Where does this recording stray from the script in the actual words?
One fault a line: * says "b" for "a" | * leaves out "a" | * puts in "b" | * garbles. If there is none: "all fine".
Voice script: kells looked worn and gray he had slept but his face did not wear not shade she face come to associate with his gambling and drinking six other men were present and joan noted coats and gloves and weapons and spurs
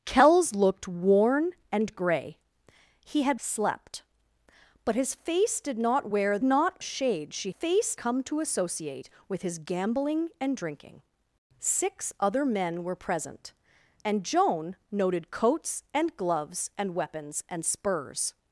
all fine